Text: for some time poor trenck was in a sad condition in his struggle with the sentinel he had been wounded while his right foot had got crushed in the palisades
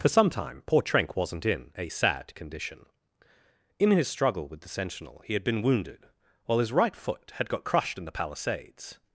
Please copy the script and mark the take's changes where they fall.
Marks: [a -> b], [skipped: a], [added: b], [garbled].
for some time poor trenck [was -> wasn't] in a sad condition in his struggle with the sentinel he had been wounded while his right foot had got crushed in the palisades